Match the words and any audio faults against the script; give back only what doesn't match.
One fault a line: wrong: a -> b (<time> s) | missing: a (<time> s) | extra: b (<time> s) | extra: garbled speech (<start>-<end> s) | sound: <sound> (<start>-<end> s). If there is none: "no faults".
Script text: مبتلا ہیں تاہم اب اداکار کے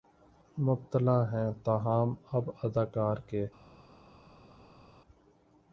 no faults